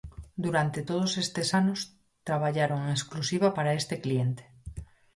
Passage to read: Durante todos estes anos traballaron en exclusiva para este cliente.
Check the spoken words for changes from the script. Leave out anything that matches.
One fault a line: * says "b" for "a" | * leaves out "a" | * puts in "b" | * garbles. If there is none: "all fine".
all fine